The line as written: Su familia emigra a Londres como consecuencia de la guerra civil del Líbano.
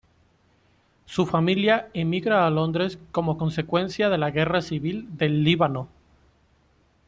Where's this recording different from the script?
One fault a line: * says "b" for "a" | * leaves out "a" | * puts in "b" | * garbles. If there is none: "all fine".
all fine